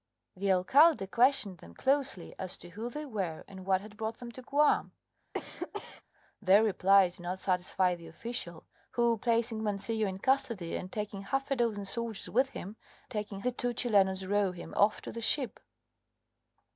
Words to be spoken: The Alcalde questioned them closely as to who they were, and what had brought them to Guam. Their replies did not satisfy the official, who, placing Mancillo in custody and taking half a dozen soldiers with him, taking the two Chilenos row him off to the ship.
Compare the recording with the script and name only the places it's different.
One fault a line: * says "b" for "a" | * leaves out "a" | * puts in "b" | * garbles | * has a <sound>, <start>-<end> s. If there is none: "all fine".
* has a cough, 5.3-6.0 s